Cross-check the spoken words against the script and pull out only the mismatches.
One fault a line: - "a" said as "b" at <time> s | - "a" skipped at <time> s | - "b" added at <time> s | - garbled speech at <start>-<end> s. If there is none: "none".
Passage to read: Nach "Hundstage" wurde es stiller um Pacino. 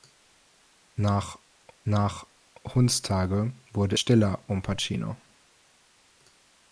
- "nach" added at 1.8 s
- "es" skipped at 4.0 s